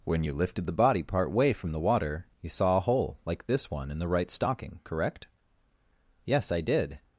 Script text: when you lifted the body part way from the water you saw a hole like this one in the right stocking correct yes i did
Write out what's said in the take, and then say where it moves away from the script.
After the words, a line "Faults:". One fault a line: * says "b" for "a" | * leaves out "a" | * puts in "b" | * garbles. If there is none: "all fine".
when you lifted the body part way from the water you saw a hole like this one in the right stocking correct yes i did
Faults:
all fine